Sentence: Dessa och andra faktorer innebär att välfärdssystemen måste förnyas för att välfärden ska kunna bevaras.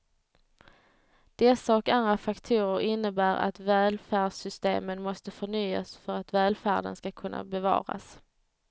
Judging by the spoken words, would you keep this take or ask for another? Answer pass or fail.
pass